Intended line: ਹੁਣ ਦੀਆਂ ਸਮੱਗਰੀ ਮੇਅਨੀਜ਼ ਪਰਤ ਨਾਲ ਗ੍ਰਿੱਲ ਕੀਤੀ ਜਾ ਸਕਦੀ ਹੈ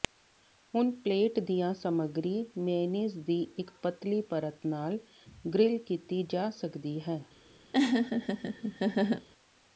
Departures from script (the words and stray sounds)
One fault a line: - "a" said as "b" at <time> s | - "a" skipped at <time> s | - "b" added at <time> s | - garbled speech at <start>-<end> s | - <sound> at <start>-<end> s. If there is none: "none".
- "ਪਲੇਟ" added at 1.0 s
- "ਦੀ ਇੱਕ ਪਤਲੀ" added at 3.2 s
- laugh at 7.7-9.3 s